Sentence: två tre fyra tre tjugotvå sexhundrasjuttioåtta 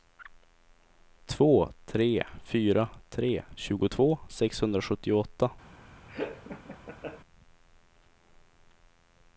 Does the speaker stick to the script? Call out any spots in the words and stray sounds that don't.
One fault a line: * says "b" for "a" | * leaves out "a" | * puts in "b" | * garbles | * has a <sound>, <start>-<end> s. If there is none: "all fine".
* has a laugh, 6.1-7.2 s